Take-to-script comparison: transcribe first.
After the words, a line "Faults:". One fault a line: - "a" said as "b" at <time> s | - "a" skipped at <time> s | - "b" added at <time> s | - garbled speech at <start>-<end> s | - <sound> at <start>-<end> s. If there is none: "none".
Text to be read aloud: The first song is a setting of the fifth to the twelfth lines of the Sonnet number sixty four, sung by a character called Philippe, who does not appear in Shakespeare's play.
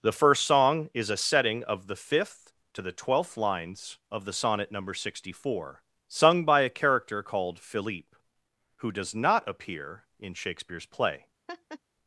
The first song is a setting of the fifth to the twelfth lines of the Sonnet number sixty four, sung by a character called Philippe, who does not appear in Shakespeare's play.
Faults:
- laugh at 11.5-11.8 s